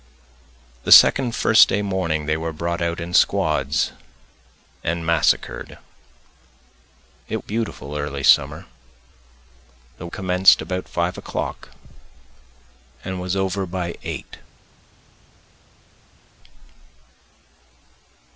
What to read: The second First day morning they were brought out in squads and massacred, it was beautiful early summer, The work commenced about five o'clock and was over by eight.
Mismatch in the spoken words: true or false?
true